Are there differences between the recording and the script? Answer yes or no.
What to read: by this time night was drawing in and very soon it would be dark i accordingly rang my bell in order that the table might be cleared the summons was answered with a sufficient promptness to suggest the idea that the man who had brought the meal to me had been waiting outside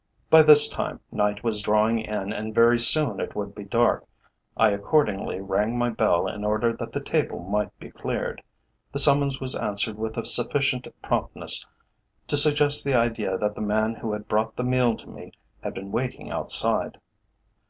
no